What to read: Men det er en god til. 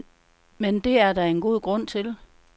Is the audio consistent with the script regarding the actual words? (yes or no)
no